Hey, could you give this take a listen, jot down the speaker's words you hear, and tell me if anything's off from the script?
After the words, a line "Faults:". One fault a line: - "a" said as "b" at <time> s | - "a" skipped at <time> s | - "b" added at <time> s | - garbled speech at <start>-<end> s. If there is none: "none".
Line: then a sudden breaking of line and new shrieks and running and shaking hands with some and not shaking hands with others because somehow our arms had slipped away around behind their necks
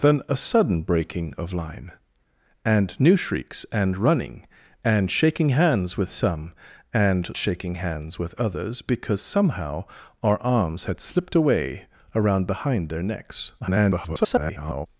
then a sudden breaking of line and new shrieks and running and shaking hands with some and shaking hands with others because somehow our arms had slipped away around behind their necks [garbled]
Faults:
- "not" skipped at 7.3 s
- garbled speech at 13.6-14.9 s